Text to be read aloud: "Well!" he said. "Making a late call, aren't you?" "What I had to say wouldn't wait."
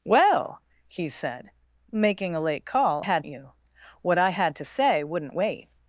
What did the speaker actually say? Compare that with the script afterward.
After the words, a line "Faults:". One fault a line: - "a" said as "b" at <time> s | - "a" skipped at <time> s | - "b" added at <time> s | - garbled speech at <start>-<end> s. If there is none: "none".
"Well!" he said. "Making a late call, had you?" "What I had to say wouldn't wait."
Faults:
- "aren't" said as "had" at 3.0 s